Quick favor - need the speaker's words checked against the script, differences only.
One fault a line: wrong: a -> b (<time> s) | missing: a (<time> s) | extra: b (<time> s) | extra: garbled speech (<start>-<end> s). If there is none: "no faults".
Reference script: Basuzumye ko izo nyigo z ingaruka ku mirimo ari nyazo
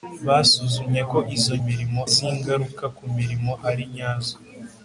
wrong: nyigo -> mirimo (1.7 s)